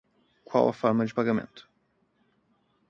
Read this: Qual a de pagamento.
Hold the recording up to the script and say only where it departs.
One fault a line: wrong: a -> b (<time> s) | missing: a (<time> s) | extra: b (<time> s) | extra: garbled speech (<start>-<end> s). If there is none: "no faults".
extra: forma (0.7 s)